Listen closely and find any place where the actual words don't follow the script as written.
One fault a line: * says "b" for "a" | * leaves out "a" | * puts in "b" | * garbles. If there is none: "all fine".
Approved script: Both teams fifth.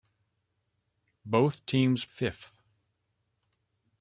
all fine